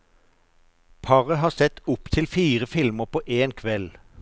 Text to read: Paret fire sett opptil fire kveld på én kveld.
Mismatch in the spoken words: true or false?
true